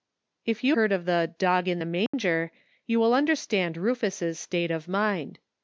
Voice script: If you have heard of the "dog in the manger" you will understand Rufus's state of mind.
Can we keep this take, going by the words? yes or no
no